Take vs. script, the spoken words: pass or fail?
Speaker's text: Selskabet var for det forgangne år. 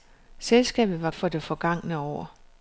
pass